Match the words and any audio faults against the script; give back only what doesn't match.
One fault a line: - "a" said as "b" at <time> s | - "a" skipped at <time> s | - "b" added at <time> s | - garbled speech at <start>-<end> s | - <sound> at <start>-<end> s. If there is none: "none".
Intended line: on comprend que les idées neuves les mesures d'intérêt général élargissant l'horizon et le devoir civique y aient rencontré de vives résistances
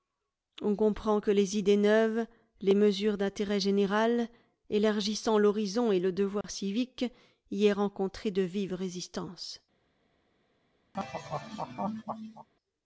- dropout at 6.4-6.4 s
- laugh at 10.9-12.5 s